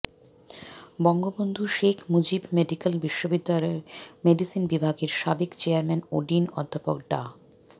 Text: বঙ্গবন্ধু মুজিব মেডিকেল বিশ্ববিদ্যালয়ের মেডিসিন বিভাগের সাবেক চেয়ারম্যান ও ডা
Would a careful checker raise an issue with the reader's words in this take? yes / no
yes